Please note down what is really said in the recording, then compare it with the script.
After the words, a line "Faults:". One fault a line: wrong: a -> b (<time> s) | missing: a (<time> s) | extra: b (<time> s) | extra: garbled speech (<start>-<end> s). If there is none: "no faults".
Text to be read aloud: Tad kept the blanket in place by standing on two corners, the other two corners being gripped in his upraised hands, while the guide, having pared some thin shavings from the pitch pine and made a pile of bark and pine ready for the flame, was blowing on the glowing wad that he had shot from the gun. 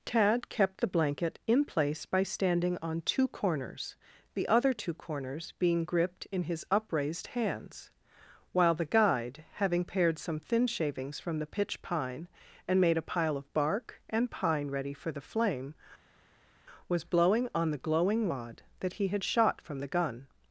Tad kept the blanket in place by standing on two corners, the other two corners being gripped in his upraised hands, while the guide, having pared some thin shavings from the pitch pine and made a pile of bark and pine ready for the flame, was blowing on the glowing wad that he had shot from the gun.
Faults:
no faults